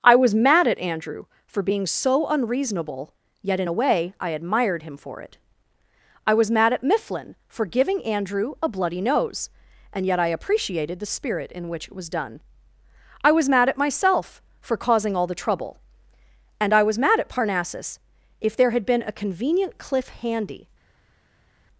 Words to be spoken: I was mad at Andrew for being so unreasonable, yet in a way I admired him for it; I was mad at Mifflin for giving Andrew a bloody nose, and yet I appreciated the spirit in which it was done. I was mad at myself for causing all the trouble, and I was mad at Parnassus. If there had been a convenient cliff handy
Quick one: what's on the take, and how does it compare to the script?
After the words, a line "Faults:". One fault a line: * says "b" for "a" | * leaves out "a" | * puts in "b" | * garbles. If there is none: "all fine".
I was mad at Andrew for being so unreasonable, yet in a way I admired him for it; I was mad at Mifflin for giving Andrew a bloody nose, and yet I appreciated the spirit in which it was done. I was mad at myself for causing all the trouble, and I was mad at Parnassus. If there had been a convenient cliff handy
Faults:
all fine